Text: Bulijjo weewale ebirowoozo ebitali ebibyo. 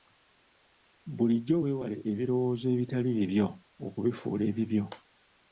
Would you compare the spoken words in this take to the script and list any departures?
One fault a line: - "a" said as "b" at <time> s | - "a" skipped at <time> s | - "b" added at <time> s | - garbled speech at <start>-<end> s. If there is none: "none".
- "bibyo okubifuula" added at 3.2 s